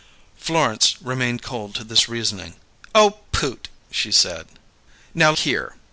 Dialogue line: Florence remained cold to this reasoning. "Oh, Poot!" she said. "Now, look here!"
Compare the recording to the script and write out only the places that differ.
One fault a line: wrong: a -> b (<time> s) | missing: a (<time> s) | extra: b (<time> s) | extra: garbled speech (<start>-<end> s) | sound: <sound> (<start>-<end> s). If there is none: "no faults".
missing: look (5.3 s)